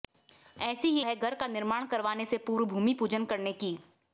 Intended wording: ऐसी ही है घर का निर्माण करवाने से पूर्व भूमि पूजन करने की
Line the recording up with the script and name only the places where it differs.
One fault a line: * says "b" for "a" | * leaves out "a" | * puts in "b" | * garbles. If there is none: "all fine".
all fine